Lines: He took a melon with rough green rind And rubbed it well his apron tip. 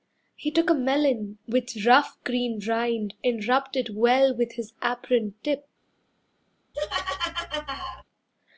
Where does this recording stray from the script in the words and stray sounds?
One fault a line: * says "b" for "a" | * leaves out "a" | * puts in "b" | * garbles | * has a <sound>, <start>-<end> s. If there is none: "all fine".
* puts in "with"
* has a laugh, 6.7-8.0 s